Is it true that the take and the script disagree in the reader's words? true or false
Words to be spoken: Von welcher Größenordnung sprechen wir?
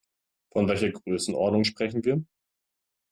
false